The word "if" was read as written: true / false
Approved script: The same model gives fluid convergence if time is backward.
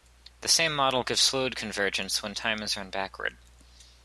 false